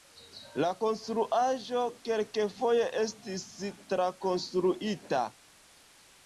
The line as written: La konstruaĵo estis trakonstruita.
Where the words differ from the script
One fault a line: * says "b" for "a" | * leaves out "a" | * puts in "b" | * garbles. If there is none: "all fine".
* puts in "kelkfoje"